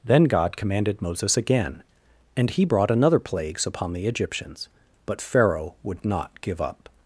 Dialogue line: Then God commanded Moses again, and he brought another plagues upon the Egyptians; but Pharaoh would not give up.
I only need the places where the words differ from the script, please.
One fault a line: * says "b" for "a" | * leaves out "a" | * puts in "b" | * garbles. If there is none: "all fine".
all fine